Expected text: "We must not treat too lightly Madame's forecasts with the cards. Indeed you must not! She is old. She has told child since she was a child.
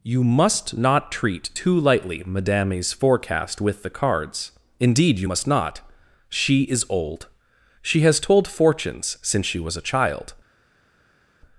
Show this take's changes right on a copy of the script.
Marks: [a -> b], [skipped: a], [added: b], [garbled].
["We -> You] must not treat too lightly Madame's [forecasts -> forecast] with the cards. Indeed you must not! She is old. She has told [child -> fortunes] since she was a child.